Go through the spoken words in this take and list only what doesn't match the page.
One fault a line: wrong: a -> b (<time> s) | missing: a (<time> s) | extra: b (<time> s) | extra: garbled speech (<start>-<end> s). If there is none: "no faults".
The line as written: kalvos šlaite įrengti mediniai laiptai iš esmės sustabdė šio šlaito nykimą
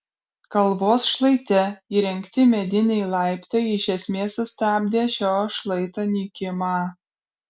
no faults